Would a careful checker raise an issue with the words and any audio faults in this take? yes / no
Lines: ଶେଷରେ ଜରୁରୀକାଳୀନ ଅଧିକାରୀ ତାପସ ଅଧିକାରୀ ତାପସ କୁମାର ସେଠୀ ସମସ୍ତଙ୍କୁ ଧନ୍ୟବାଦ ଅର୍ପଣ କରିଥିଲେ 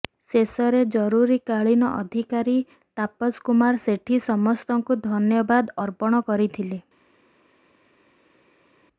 yes